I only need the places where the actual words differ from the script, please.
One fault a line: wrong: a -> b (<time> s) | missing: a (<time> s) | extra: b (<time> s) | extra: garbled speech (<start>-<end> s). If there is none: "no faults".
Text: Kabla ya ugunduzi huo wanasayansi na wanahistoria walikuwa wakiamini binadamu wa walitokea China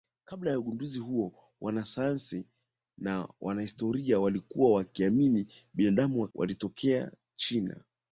no faults